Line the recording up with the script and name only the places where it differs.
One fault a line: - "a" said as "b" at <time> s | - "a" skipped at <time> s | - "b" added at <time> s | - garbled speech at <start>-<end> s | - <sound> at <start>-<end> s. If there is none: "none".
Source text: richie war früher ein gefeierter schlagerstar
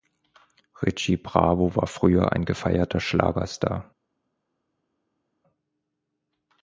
- "bravo" added at 1.2 s